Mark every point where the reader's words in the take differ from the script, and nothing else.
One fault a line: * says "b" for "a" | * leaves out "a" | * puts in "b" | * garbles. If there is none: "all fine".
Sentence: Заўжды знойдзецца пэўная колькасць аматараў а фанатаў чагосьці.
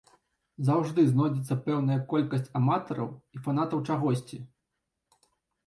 * says "і" for "а"